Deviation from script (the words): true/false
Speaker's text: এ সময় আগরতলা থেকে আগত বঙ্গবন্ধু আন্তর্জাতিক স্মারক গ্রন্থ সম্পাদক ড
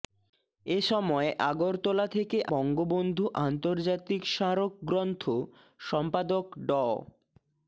true